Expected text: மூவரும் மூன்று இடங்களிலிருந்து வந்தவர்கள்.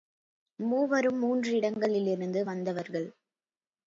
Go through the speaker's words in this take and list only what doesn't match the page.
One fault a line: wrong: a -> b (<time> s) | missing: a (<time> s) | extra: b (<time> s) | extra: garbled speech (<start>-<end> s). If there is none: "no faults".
no faults